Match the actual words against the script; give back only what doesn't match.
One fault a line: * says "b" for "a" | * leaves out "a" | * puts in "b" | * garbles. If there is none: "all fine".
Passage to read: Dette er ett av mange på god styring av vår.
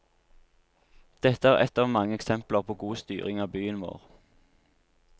* puts in "eksempler"
* puts in "byen"